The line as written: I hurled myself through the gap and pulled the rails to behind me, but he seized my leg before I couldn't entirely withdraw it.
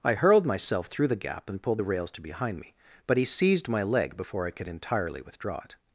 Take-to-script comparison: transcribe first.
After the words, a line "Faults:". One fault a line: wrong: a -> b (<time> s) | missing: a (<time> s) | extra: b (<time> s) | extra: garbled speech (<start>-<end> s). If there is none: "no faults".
I hurled myself through the gap and pulled the rails to behind me, but he seized my leg before I could entirely withdraw it.
Faults:
wrong: couldn't -> could (4.5 s)